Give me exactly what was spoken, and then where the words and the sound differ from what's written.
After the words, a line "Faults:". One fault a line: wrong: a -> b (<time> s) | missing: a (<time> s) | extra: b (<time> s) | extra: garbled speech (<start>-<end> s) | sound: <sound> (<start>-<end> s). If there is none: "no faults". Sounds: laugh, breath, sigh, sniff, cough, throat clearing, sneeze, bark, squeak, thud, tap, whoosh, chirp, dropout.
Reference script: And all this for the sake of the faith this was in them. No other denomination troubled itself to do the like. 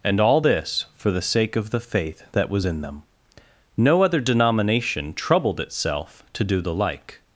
And all this for the sake of the faith that was in them. No other denomination troubled itself to do the like.
Faults:
wrong: this -> that (2.3 s)